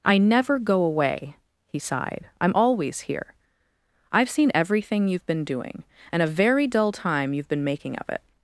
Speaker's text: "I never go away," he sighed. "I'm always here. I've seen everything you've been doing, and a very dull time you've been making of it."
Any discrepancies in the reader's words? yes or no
no